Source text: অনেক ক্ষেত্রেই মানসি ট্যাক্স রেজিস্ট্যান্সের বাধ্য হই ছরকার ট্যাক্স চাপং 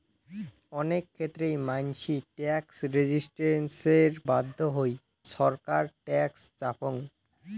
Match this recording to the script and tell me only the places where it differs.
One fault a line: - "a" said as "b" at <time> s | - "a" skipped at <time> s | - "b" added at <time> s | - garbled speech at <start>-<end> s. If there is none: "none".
none